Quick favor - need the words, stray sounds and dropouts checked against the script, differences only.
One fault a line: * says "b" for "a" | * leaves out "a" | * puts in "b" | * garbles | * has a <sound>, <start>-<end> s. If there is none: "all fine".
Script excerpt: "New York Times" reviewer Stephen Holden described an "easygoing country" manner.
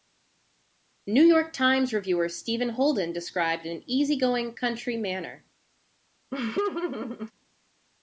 * has a laugh, 6.3-7.3 s